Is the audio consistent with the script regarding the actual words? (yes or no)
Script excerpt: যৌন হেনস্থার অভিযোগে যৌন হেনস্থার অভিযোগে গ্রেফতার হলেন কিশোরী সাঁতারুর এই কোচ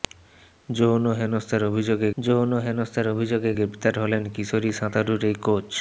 yes